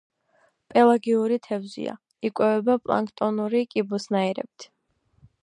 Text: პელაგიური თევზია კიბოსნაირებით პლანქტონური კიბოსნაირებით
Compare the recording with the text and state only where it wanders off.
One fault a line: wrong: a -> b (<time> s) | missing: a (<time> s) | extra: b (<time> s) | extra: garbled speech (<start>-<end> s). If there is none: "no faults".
wrong: კიბოსნაირებით -> იკვებება (2.3 s)